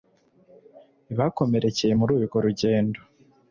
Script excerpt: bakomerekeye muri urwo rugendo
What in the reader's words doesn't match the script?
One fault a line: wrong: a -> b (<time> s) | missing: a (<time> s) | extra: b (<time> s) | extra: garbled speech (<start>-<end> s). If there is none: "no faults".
no faults